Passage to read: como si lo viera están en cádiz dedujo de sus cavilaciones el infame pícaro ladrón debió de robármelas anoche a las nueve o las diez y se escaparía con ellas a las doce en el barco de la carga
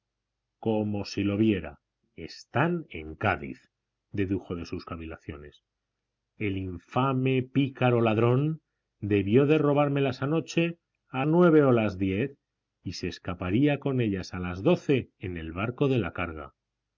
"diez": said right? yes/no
yes